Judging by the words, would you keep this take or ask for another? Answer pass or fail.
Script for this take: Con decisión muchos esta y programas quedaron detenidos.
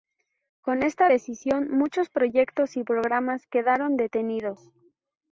fail